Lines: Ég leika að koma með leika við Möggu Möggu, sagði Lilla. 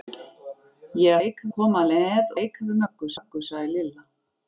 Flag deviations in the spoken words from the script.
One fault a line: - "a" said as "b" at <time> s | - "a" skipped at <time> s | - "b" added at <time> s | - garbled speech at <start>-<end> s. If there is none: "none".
none